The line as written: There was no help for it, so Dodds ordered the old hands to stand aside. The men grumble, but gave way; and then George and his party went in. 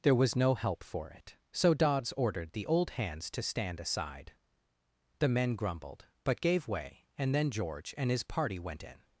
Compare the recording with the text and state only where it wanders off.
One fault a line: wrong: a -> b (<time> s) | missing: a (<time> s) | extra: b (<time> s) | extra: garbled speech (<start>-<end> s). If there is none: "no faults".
wrong: grumble -> grumbled (5.5 s)